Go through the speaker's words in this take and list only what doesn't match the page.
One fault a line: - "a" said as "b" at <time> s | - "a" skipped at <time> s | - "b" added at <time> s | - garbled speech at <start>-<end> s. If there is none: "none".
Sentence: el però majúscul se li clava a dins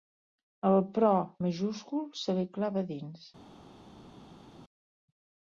none